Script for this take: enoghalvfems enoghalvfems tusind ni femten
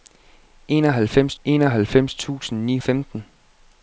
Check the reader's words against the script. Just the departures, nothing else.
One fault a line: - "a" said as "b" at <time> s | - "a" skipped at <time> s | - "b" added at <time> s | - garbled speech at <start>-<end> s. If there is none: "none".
none